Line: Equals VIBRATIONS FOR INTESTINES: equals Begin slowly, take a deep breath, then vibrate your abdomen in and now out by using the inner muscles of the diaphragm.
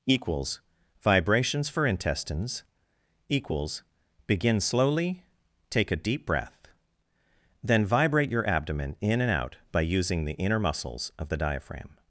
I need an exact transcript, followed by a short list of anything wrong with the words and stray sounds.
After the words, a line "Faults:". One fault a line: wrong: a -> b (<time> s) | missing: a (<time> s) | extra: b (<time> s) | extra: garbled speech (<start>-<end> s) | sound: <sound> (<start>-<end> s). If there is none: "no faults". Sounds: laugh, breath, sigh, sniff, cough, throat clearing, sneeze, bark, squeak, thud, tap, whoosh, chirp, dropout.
Equals VIBRATIONS FOR INTESTINES: equals Begin slowly, take a deep breath, then vibrate your abdomen in and out by using the inner muscles of the diaphragm.
Faults:
missing: now (9.3 s)